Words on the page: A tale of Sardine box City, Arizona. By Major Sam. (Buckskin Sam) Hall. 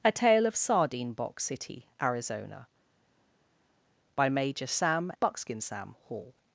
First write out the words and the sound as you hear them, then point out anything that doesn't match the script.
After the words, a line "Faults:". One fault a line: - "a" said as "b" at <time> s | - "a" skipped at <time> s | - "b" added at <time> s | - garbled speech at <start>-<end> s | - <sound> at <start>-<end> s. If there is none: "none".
A tale of Sardine box City, Arizona. By Major Sam. (Buckskin Sam) Hall.
Faults:
none